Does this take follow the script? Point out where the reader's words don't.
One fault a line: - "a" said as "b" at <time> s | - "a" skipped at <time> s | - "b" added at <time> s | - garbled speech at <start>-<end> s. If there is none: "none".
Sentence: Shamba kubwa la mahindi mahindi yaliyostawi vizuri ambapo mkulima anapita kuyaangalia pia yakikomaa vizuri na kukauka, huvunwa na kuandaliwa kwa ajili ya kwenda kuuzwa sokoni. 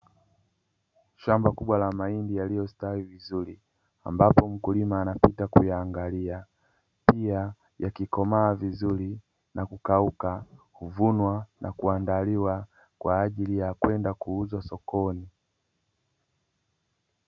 - "mahindi" skipped at 2.4 s